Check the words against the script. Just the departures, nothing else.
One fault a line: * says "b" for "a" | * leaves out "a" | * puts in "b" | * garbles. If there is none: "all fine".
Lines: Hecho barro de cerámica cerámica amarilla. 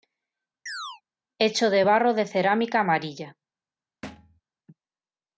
* puts in "de"
* leaves out "cerámica"